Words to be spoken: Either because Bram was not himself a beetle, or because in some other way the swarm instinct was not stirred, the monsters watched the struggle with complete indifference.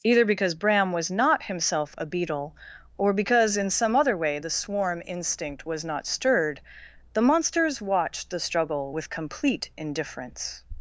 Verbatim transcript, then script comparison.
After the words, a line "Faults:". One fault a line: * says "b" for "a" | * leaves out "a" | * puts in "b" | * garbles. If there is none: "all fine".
Either because Bram was not himself a beetle, or because in some other way the swarm instinct was not stirred, the monsters watched the struggle with complete indifference.
Faults:
all fine